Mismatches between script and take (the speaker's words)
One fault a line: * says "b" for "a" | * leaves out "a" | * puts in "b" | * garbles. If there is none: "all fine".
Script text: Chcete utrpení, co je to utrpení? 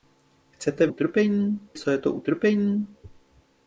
all fine